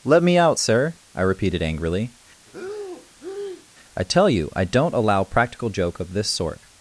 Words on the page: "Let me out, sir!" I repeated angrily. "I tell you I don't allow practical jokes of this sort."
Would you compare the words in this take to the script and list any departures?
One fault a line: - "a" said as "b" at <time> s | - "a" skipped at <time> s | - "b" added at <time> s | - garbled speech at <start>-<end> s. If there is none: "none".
- "jokes" said as "joke" at 5.7 s